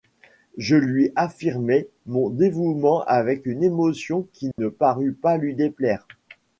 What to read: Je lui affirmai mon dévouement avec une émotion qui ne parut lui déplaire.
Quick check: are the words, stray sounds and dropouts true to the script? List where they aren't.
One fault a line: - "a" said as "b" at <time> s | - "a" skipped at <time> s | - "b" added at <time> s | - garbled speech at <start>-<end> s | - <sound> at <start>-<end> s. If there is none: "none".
- dropout at 4.5-4.6 s
- "pas" added at 5.1 s